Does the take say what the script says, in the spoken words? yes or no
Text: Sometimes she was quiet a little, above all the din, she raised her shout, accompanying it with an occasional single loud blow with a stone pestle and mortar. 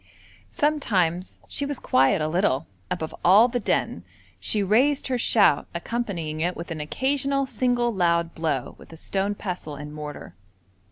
yes